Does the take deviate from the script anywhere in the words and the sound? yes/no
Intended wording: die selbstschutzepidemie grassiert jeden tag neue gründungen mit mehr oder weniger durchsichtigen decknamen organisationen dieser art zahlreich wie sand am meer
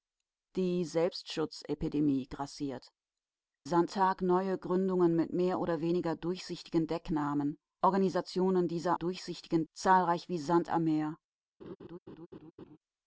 yes